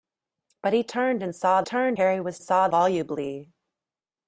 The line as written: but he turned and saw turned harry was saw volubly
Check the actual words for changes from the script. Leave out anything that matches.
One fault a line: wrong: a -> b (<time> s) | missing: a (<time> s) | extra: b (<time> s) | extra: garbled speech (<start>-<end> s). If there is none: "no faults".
no faults